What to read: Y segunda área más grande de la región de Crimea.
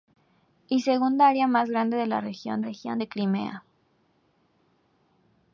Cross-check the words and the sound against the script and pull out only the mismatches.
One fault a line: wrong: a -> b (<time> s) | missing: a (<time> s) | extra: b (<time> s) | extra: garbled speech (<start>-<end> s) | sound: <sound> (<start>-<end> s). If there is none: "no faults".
extra: región (2.6 s)